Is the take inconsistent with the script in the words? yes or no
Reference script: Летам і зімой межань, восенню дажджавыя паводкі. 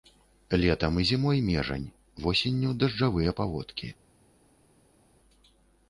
no